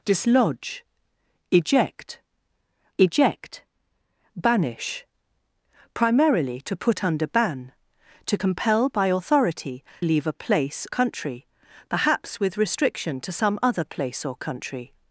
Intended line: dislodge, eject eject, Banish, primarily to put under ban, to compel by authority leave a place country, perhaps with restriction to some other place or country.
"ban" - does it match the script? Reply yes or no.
yes